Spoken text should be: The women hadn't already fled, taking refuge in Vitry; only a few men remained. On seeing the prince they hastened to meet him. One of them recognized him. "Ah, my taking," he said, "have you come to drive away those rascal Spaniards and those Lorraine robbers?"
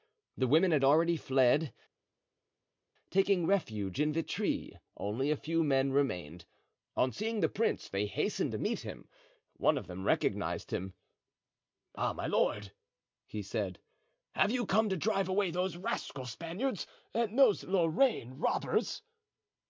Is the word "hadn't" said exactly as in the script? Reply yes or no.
no